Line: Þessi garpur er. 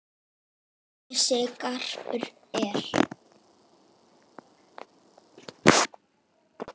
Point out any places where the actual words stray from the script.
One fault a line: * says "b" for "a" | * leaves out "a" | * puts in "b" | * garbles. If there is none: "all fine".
all fine